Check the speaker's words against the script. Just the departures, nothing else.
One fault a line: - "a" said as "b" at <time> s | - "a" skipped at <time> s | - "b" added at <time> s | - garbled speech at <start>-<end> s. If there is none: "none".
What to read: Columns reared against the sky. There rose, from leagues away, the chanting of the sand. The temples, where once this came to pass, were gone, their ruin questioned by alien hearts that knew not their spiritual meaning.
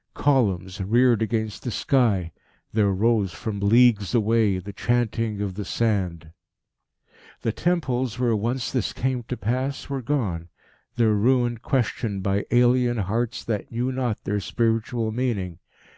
none